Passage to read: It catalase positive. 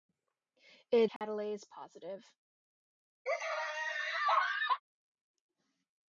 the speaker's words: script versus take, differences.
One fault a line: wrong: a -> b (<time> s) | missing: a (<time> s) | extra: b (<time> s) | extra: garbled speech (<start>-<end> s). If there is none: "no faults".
no faults